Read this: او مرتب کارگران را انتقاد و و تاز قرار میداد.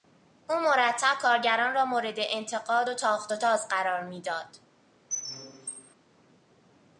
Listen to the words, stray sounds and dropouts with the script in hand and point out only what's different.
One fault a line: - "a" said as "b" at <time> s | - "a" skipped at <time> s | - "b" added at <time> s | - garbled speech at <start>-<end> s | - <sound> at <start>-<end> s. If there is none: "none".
- "مورد" added at 1.9 s
- "تاخت" added at 2.9 s
- squeak at 5.1-5.9 s